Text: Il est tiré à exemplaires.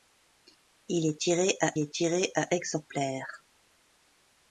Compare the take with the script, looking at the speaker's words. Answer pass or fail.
fail